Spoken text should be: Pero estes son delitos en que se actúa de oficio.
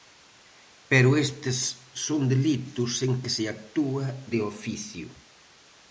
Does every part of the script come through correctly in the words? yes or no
yes